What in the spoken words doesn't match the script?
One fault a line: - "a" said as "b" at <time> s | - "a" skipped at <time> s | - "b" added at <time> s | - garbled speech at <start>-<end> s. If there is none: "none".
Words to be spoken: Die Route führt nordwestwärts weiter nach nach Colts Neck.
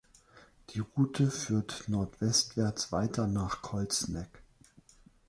- "nach" skipped at 3.7 s